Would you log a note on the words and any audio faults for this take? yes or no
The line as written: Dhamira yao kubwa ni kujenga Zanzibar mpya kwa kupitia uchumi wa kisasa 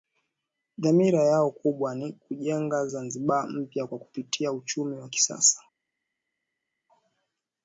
no